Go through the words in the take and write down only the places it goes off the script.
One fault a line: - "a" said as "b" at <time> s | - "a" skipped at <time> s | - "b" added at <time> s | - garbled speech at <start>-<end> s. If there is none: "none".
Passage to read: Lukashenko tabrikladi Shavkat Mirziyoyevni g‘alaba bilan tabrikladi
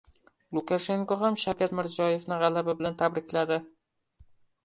- "tabrikladi" said as "ham" at 1.2 s